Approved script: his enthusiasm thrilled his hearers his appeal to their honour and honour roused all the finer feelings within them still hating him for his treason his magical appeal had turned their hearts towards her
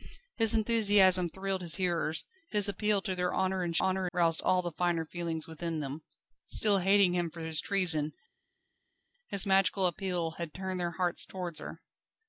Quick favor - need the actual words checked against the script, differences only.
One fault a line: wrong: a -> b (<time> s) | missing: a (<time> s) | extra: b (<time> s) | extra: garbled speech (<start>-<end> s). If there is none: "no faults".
no faults